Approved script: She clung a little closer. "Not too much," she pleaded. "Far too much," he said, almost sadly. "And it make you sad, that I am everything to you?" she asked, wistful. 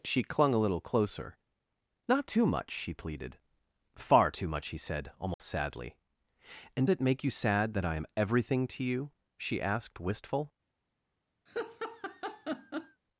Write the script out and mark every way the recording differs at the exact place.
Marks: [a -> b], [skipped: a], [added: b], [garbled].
She clung a little closer. "Not too much," she pleaded. "Far too much," he said, almost sadly. "And it make you sad, that I am everything to you?" she asked, wistful.